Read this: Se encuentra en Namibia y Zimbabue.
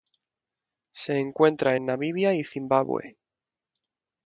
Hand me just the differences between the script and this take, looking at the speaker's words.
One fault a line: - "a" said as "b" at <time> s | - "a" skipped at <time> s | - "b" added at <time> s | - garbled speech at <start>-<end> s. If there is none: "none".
none